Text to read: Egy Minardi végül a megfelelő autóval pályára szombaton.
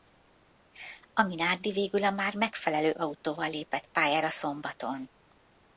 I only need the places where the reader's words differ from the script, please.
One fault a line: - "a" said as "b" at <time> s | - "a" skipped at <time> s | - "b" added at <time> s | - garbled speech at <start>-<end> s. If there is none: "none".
- "Egy" said as "A" at 1.1 s
- "már" added at 2.1 s
- "lépett" added at 3.5 s